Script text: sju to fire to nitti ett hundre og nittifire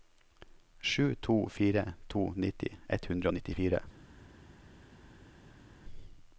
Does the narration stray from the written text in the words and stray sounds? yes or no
no